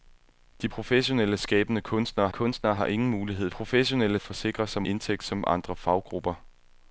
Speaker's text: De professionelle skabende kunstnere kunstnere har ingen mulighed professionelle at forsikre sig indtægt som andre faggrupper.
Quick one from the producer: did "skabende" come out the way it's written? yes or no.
yes